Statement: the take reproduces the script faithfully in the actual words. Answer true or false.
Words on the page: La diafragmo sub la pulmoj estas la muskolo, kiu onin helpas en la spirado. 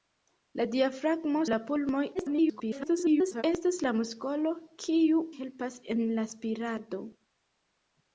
false